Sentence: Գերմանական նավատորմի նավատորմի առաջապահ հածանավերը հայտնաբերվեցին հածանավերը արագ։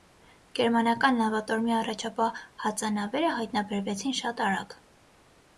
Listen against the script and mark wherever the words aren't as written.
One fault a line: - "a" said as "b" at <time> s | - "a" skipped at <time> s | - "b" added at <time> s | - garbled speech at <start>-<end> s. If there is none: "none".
- "նավատորմի" skipped at 1.8 s
- "հածանավերը" said as "շատ" at 4.2 s